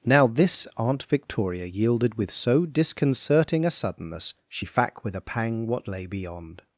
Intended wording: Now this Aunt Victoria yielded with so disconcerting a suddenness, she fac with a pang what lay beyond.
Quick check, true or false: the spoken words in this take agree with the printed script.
true